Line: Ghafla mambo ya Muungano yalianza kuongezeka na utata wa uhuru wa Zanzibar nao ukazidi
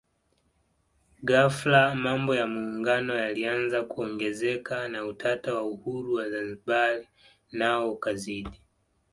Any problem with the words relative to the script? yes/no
no